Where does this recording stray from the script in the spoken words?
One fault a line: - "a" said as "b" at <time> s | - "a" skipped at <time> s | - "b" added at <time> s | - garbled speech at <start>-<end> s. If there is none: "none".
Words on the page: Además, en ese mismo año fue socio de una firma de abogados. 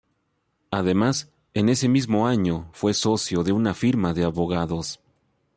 none